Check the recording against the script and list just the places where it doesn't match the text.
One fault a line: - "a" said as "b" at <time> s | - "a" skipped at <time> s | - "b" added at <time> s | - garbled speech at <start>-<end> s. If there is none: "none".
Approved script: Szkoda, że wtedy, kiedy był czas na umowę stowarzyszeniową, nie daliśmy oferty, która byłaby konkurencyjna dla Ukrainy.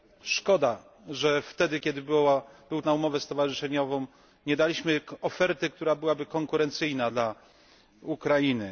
- "czas" skipped at 2.8 s